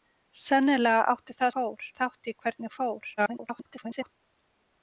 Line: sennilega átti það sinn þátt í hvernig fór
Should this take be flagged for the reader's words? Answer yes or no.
yes